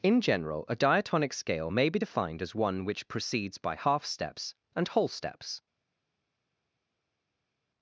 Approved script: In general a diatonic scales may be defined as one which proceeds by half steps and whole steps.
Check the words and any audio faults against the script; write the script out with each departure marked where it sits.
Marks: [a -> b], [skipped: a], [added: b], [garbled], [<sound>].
In general a diatonic [scales -> scale] may be defined as one which proceeds by half steps and whole steps.